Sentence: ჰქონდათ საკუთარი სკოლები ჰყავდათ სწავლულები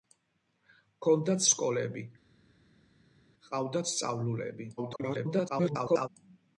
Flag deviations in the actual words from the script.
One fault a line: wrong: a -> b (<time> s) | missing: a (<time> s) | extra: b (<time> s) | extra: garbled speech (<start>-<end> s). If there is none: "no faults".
missing: საკუთარი (1.4 s)
extra: garbled speech (4.8-6.1 s)